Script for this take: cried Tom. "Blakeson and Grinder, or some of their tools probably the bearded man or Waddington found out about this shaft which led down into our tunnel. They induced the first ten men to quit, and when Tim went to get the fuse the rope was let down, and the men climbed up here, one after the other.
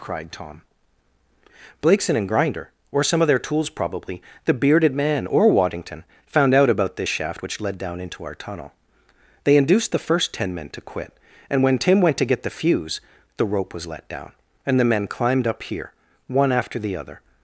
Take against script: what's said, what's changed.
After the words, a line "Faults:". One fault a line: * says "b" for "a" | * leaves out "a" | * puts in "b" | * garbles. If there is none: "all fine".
cried Tom. "Blakeson and Grinder, or some of their tools probably the bearded man or Waddington found out about this shaft which led down into our tunnel. They induced the first ten men to quit, and when Tim went to get the fuse the rope was let down, and the men climbed up here, one after the other.
Faults:
all fine